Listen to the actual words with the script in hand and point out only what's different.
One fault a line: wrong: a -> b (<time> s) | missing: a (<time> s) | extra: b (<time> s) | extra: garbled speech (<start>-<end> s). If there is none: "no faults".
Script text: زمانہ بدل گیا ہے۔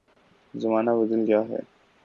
no faults